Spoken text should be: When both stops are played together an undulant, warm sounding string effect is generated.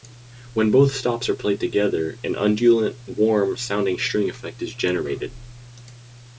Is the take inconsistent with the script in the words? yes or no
no